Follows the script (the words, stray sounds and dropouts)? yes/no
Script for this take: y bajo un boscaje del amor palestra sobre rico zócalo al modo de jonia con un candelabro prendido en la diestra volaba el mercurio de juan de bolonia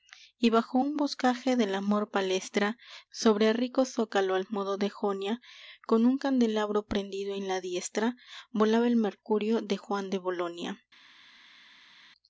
yes